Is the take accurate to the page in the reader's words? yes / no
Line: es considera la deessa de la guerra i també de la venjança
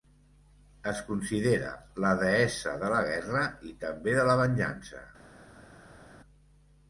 yes